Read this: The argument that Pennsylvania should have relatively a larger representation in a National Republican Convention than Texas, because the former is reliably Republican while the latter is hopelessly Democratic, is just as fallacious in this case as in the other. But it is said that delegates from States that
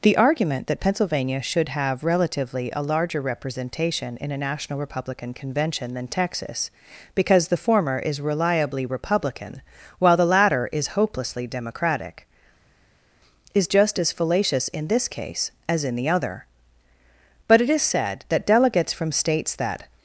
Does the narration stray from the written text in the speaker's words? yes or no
no